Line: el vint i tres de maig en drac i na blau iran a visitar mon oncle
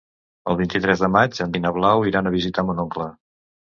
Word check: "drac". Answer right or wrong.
wrong